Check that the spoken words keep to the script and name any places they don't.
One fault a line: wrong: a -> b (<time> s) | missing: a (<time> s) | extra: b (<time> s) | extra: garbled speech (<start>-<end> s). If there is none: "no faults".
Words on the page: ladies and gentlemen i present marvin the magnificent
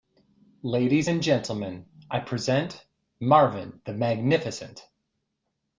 no faults